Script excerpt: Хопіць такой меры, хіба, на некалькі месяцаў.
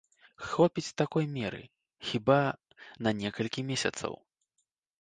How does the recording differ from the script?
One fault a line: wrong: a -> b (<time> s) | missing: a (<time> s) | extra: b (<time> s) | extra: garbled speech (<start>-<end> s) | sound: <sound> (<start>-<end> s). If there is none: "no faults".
no faults